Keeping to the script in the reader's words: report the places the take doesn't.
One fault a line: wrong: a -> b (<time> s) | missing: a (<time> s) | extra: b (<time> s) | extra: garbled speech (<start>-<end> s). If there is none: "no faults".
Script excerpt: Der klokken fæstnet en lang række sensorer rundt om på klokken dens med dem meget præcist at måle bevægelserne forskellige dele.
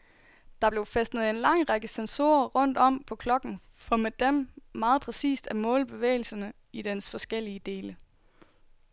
wrong: klokken -> blev (0.7 s)
wrong: dens -> for (3.7 s)
extra: i dens (6.7 s)